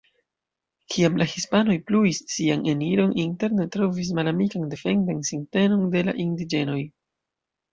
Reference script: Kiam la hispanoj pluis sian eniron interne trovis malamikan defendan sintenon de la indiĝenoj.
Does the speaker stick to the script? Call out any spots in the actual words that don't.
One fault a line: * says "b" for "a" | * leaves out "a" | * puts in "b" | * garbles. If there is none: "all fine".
all fine